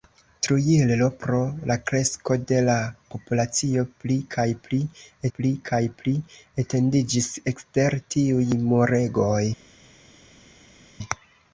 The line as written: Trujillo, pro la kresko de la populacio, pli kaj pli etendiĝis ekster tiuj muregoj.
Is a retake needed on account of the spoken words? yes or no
yes